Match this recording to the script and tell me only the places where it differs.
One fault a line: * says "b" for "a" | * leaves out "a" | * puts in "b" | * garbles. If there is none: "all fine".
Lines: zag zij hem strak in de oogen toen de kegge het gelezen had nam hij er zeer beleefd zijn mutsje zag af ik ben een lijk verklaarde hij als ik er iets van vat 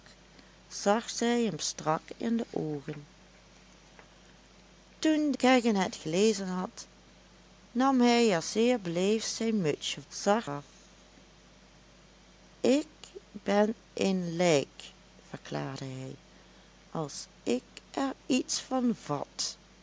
all fine